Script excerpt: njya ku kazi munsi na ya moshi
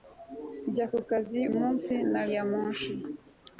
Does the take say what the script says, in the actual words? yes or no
yes